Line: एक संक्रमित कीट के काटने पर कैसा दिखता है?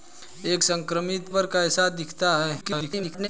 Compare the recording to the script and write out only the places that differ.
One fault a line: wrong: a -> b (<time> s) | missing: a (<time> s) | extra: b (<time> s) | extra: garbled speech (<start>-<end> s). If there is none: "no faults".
missing: कीट के काटने (1.3 s)
extra: garbled speech (2.6-3.3 s)